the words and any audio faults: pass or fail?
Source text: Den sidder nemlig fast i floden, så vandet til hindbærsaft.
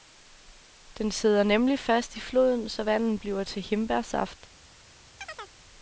fail